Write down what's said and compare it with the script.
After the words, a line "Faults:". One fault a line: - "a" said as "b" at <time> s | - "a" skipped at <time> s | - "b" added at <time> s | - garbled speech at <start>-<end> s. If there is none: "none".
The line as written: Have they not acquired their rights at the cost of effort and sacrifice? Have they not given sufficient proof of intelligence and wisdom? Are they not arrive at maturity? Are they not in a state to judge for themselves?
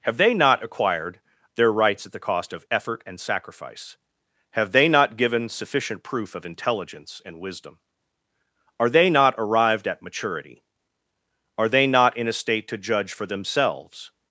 Have they not acquired their rights at the cost of effort and sacrifice? Have they not given sufficient proof of intelligence and wisdom? Are they not arrived at maturity? Are they not in a state to judge for themselves?
Faults:
- "arrive" said as "arrived" at 9.4 s